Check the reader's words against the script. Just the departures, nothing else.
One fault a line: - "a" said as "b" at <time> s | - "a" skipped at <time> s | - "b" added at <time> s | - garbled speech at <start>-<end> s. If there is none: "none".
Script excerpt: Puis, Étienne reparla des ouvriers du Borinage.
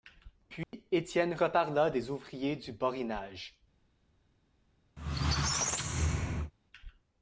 none